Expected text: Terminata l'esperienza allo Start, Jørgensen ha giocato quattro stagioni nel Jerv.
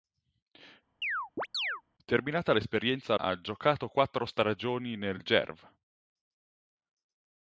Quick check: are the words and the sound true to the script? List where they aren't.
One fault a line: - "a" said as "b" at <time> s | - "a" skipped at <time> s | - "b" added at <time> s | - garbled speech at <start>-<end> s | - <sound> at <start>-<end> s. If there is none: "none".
- chirp at 1.0-1.8 s
- "allo Start Jørgensen" skipped at 3.1 s